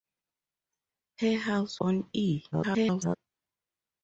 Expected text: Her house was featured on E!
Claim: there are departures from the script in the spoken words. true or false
true